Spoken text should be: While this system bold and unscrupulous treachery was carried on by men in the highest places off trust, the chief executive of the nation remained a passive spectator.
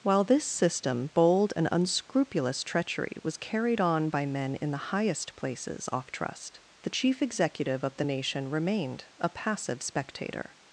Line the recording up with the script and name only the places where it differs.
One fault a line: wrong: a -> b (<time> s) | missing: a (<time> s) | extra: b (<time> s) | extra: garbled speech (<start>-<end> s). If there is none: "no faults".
no faults